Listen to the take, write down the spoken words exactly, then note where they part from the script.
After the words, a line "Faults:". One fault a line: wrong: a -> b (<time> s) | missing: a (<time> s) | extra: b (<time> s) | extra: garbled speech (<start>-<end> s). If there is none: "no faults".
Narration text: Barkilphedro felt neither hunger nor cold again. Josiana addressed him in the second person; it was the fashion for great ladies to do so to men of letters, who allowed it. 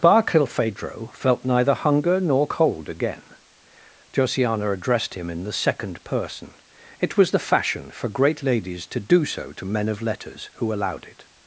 Barkilphedro felt neither hunger nor cold again. Josiana addressed him in the second person; it was the fashion for great ladies to do so to men of letters, who allowed it.
Faults:
no faults